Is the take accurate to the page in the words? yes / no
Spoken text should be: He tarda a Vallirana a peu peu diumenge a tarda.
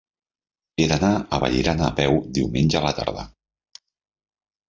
no